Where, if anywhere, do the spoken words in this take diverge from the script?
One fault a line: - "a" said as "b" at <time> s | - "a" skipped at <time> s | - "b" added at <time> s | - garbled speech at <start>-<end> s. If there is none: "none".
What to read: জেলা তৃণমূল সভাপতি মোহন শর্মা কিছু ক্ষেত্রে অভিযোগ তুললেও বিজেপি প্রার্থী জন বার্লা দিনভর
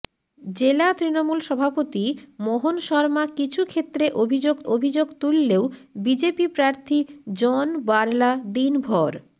- "অভিযোগ" added at 4.7 s